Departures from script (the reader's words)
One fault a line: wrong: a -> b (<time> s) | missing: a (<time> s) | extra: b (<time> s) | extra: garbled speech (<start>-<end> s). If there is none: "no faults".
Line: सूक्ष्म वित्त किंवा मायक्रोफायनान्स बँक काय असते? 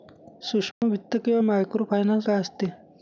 missing: बँक (2.3 s)